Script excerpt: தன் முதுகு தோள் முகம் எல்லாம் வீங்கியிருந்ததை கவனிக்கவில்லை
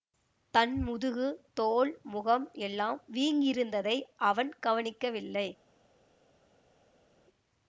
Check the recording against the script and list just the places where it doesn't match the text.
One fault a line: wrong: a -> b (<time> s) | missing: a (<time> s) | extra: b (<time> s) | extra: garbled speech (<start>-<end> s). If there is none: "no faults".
extra: அவன் (4.2 s)